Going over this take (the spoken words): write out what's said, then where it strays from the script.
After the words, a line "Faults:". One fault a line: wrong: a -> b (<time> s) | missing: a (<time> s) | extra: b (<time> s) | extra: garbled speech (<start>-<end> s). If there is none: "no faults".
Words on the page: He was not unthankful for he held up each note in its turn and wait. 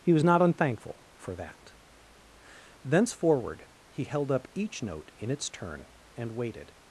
He was not unthankful for that. Thenceforward he held up each note in its turn and waited.
Faults:
extra: that Thenceforward (1.4 s)
wrong: wait -> waited (6.3 s)